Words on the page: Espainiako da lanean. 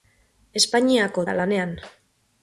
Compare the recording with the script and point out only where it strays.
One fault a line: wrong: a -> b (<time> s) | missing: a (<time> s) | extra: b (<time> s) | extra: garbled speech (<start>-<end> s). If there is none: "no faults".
no faults